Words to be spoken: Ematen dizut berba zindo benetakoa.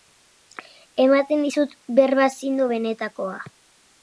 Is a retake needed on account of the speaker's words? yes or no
no